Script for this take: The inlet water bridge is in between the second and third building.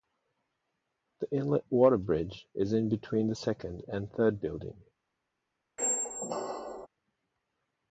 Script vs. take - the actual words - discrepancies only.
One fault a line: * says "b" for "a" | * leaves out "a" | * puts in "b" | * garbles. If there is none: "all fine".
all fine